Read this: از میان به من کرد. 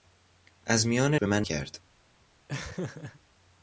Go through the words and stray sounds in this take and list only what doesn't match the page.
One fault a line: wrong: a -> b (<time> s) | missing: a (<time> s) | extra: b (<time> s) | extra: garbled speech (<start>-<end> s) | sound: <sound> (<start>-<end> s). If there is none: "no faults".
sound: laugh (2.5-3.2 s)